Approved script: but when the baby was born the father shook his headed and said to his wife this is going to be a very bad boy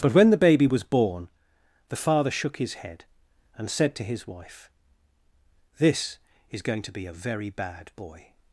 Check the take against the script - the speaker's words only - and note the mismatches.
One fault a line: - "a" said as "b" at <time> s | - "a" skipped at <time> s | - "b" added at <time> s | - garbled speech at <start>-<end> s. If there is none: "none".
- "headed" said as "head" at 2.7 s